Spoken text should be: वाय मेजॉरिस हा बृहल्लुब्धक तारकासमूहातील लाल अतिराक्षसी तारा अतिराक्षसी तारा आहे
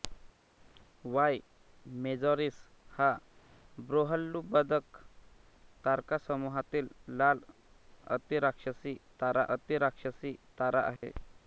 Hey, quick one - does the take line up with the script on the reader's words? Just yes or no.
yes